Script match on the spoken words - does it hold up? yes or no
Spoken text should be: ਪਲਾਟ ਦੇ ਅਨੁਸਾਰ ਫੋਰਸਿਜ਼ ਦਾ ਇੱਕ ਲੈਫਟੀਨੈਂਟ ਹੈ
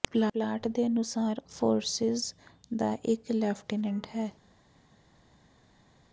yes